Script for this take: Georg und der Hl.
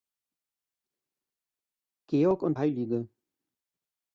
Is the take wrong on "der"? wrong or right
wrong